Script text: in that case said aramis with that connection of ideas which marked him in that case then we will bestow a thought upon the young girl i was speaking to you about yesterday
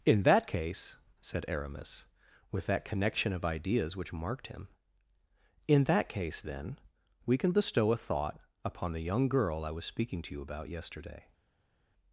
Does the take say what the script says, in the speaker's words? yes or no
no